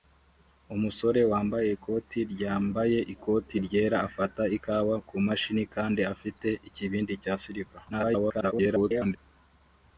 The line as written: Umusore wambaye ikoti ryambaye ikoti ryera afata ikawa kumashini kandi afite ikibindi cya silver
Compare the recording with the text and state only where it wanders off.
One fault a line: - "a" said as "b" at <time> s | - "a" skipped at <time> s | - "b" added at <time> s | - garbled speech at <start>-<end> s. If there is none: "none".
- garbled speech at 7.9-9.2 s